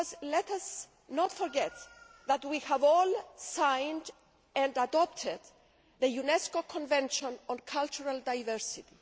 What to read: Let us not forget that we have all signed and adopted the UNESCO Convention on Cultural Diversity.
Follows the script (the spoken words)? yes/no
yes